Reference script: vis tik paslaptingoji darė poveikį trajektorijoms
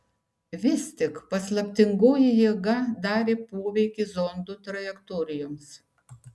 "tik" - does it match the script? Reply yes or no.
yes